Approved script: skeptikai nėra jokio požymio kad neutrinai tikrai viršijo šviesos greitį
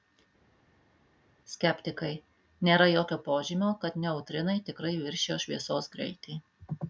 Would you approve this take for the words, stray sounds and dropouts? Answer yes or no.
yes